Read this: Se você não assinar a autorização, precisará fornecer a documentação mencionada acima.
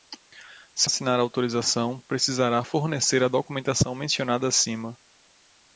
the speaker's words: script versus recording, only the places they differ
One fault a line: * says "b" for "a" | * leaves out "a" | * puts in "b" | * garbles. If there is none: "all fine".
* leaves out "você não"